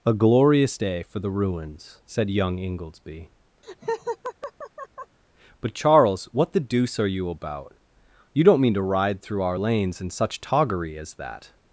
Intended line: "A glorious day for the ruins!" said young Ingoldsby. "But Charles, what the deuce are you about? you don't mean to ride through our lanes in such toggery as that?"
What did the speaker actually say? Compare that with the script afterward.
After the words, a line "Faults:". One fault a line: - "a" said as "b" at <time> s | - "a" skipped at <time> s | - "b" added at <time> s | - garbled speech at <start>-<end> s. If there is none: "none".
"A glorious day for the ruins!" said young Ingoldsby. "But Charles, what the deuce are you about? you don't mean to ride through our lanes in such toggery as that?"
Faults:
none